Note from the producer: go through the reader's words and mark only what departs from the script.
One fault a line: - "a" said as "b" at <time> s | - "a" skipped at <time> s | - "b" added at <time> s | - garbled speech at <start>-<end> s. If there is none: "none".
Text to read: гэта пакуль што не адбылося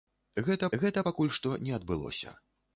- "гэта" added at 0.8 s